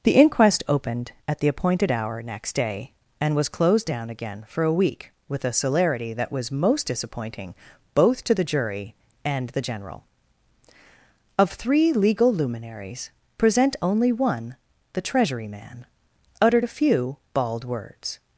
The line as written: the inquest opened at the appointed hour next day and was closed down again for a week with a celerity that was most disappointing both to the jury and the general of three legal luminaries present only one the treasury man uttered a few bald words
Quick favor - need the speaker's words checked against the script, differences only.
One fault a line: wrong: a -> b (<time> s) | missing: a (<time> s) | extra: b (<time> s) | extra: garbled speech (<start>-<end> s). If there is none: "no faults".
no faults